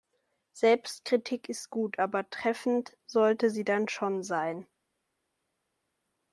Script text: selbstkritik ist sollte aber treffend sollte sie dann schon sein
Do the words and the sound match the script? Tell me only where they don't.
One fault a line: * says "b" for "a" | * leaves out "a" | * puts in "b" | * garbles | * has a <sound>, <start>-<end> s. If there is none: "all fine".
* says "gut" for "sollte"